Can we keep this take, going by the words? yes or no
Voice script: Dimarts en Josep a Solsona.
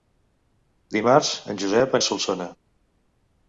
yes